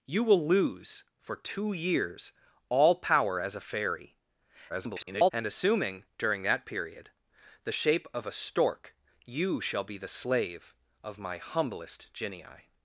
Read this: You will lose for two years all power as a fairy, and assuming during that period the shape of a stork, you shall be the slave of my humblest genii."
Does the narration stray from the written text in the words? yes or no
yes